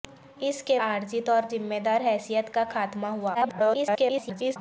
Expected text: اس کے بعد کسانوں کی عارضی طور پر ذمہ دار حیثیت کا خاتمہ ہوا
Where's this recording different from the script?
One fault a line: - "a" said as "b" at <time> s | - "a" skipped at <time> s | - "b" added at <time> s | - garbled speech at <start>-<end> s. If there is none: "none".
- "بعد کسانوں کی" skipped at 0.8 s
- "پر" skipped at 1.4 s
- garbled speech at 3.3-4.6 s